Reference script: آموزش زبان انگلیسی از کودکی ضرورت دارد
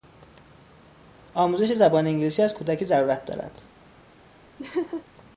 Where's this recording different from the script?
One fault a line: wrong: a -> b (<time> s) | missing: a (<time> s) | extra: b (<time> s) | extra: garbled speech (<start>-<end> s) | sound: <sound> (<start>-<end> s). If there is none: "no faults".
sound: laugh (4.6-5.0 s)